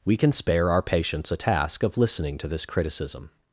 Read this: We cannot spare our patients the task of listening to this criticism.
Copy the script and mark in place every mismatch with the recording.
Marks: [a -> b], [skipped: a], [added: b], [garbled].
We [cannot -> can] spare our patients [the -> a] task of listening to this criticism.